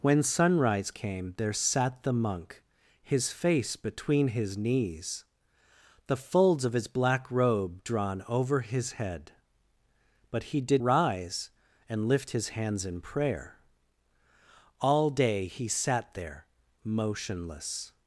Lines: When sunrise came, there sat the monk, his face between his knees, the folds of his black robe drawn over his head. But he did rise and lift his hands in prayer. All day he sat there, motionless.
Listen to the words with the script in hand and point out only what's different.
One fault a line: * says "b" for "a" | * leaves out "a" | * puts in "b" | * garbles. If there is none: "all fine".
all fine